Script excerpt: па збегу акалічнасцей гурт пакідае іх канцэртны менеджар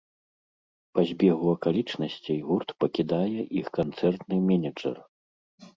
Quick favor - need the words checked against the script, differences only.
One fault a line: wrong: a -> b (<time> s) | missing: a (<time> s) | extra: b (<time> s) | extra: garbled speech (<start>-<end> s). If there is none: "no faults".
no faults